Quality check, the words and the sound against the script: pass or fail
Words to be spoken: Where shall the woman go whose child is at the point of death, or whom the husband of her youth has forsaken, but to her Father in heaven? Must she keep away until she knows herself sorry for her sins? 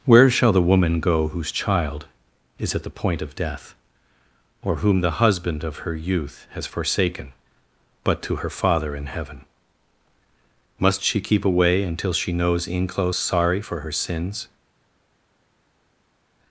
fail